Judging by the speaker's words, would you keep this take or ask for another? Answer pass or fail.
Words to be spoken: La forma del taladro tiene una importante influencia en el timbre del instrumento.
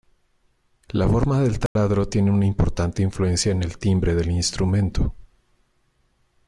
pass